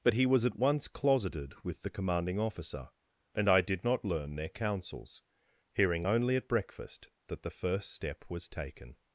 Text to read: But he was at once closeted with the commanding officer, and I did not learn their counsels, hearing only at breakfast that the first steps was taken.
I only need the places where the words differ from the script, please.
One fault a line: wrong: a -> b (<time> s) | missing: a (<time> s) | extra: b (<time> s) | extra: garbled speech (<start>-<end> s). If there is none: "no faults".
wrong: steps -> step (7.9 s)